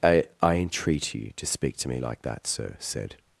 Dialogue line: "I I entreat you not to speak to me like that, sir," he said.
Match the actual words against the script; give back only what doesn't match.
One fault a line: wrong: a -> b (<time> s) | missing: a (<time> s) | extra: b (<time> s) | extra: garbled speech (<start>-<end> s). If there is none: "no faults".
missing: not (1.3 s)
missing: he (2.8 s)